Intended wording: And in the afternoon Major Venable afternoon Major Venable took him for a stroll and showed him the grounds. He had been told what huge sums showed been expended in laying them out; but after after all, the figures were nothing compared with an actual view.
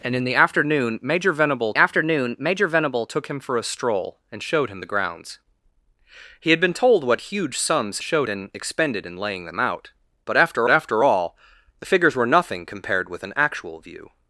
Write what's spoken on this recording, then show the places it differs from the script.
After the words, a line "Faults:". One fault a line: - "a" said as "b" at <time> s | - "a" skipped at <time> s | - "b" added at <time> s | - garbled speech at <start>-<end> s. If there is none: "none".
And in the afternoon Major Venable afternoon Major Venable took him for a stroll and showed him the grounds. He had been told what huge sums showed been expended in laying them out; but after after all, the figures were nothing compared with an actual view.
Faults:
none